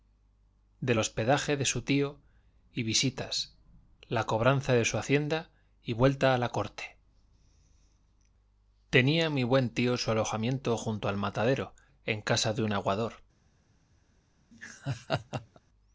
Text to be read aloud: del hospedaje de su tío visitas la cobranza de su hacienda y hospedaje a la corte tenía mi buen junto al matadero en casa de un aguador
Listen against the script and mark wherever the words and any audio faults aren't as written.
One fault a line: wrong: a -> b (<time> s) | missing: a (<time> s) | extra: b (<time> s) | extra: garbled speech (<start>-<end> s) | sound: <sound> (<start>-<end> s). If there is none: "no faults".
extra: y (2.7 s)
wrong: hospedaje -> vuelta (5.9 s)
extra: tío su alojamiento (9.7 s)
sound: laugh (14.5-15.6 s)